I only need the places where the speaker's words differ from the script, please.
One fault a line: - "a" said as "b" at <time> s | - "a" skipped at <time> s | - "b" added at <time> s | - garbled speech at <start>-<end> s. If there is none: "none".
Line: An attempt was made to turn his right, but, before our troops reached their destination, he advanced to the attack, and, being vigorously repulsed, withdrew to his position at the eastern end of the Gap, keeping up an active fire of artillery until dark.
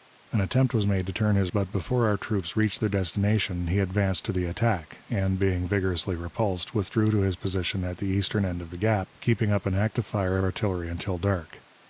- "right" skipped at 1.5 s
- "of" skipped at 10.4 s